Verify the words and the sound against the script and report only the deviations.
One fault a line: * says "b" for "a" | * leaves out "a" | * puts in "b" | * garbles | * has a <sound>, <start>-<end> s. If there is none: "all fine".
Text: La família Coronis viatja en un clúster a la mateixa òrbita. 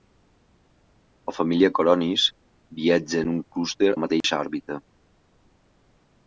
* leaves out "a"
* has a dropout, 4.2-4.2 s